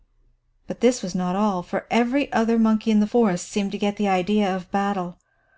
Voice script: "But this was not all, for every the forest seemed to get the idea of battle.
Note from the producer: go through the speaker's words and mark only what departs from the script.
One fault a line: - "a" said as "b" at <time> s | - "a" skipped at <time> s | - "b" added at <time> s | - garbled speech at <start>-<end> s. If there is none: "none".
- "other monkey in" added at 2.3 s